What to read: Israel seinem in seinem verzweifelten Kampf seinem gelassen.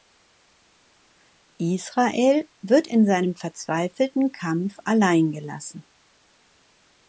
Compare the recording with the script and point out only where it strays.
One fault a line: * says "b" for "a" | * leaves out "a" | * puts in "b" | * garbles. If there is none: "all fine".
* says "wird" for "seinem"
* says "allein" for "seinem"